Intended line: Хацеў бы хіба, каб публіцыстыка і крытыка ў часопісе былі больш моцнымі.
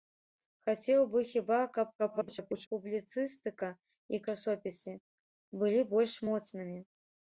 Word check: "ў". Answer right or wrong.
wrong